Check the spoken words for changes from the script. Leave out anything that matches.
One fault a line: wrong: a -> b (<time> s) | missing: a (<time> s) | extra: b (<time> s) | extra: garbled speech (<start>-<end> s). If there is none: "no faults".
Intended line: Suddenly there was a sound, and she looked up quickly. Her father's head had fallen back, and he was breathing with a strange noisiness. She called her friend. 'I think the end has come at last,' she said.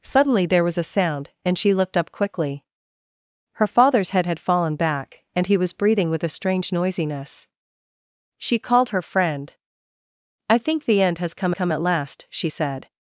extra: come (11.5 s)